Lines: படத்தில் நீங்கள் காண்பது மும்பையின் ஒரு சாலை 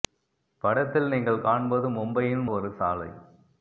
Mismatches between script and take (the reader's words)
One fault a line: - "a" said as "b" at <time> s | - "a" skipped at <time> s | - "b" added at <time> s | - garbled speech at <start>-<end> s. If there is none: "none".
none